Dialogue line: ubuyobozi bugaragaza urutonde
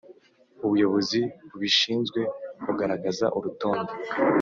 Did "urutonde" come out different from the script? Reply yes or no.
no